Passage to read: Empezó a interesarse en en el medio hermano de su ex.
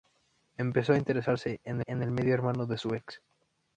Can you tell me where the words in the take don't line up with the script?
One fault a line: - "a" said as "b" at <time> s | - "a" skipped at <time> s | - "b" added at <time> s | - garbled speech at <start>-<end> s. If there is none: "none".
none